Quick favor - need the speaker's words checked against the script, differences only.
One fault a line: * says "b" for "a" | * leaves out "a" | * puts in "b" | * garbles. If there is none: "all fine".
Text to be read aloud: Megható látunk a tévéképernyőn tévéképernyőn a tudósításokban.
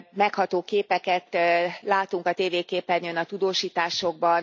* puts in "képeket"
* leaves out "tévéképernyőn"